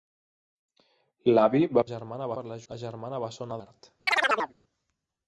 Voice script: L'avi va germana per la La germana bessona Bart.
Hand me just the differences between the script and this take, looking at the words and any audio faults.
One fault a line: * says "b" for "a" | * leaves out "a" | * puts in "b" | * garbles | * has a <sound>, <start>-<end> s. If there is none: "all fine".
* has a chirp, 4.1-4.5 s